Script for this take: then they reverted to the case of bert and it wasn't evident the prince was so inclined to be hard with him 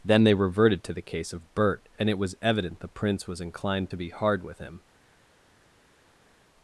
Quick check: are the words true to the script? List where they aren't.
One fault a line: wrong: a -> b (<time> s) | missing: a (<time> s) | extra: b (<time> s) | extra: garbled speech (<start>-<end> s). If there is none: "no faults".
wrong: wasn't -> was (2.2 s)
missing: so (3.4 s)